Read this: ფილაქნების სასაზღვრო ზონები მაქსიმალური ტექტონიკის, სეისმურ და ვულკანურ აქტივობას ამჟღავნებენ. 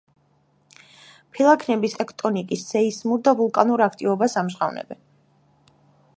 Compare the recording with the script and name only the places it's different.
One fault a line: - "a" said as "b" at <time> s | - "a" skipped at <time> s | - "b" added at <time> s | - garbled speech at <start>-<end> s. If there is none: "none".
- "სასაზღვრო ზონები მაქსიმალური" skipped at 1.9 s